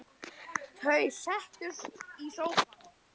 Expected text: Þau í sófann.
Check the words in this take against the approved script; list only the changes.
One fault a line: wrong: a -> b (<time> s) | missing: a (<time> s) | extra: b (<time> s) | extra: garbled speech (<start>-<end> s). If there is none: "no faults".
extra: settust (1.2 s)